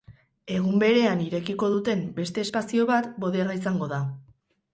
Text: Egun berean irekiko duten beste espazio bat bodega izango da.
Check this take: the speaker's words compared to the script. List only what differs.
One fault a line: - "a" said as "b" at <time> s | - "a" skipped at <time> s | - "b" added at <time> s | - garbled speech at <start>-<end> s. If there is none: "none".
none